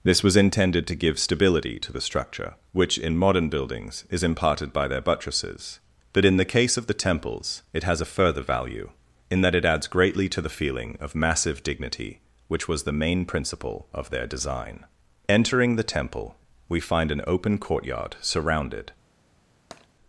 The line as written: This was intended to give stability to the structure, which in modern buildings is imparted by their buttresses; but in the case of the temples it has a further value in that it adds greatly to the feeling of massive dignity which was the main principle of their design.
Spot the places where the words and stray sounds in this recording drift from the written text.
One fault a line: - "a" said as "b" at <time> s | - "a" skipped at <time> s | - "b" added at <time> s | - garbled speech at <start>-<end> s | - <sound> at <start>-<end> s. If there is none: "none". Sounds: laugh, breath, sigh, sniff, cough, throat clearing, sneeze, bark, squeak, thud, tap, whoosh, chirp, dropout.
- "Entering the temple we find an open courtyard surrounded" added at 15.3 s
- tap at 19.7-19.9 s